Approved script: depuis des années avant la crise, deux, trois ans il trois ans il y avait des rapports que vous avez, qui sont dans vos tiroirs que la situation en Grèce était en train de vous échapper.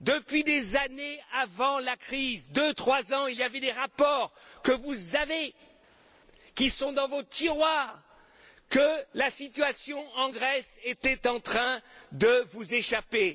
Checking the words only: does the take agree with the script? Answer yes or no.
no